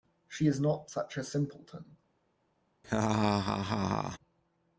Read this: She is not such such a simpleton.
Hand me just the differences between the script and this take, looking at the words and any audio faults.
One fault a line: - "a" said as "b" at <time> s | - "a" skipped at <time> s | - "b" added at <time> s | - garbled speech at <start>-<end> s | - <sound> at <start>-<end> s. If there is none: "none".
- "such" skipped at 1.2 s
- laugh at 2.8-4.2 s